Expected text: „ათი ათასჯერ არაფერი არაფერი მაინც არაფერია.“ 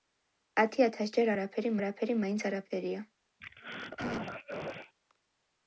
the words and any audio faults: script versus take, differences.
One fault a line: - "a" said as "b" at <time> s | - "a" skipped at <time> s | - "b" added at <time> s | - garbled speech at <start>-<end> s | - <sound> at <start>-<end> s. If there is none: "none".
- throat clearing at 3.4-4.9 s